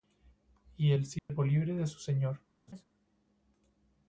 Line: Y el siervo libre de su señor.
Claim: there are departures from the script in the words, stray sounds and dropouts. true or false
true